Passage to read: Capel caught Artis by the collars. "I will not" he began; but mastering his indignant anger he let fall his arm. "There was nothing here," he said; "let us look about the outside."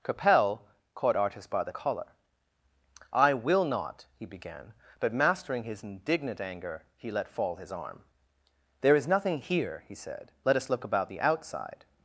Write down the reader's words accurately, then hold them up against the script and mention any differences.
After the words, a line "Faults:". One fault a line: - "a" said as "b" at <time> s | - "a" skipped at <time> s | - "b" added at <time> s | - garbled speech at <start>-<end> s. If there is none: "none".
Capel caught Artis by the collar. "I will not" he began; but mastering his indignant anger he let fall his arm. "There is nothing here," he said; "let us look about the outside."
Faults:
- "collars" said as "collar" at 1.7 s
- "was" said as "is" at 8.9 s